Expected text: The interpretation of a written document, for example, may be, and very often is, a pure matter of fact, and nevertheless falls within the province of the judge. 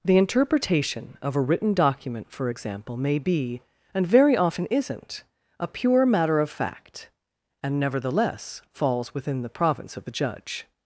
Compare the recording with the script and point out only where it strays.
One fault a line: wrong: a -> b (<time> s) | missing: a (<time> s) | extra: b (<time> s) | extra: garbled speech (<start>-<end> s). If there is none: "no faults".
wrong: is -> isn't (4.7 s)